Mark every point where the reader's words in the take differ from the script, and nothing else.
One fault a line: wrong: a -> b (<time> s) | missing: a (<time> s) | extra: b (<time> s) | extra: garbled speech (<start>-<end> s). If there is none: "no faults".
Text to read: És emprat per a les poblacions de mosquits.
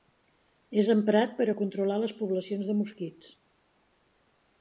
extra: controlar (1.6 s)